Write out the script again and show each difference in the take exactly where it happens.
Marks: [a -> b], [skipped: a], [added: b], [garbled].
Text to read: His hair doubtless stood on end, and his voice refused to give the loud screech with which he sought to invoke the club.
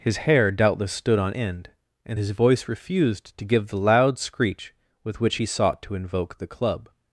His hair doubtless stood on end, and his voice refused to give the loud screech with which he sought to invoke the club.